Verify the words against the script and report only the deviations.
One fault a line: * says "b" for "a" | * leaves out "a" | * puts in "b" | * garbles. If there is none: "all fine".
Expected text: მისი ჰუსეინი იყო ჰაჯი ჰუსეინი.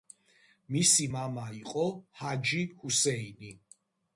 * says "მამა" for "ჰუსეინი"